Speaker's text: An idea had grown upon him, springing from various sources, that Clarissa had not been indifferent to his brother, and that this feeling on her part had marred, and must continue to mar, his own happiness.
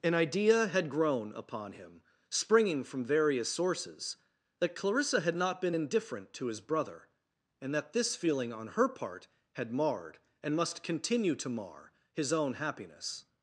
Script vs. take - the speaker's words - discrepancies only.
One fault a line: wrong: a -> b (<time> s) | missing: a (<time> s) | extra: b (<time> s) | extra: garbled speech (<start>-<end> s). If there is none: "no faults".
no faults